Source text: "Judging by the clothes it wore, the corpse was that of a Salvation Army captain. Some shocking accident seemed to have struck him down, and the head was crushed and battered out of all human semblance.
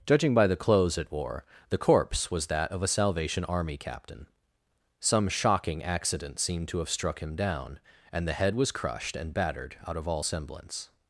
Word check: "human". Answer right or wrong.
wrong